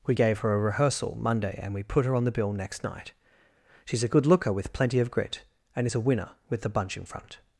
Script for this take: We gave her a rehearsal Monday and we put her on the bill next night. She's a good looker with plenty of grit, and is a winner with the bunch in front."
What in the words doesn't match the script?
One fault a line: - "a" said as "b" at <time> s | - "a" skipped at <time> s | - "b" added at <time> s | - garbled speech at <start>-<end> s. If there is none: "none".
none